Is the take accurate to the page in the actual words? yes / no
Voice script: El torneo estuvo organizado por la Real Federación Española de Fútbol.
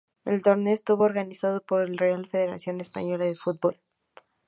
yes